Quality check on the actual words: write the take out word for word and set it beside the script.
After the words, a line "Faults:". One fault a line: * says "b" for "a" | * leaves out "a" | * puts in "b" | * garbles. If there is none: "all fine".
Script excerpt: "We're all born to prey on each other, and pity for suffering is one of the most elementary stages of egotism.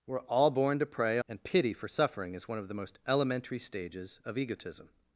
"We're all born to prey and pity for suffering is one of the most elementary stages of egotism.
Faults:
* leaves out "on each other"